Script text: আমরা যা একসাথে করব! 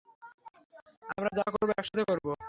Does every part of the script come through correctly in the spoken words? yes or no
no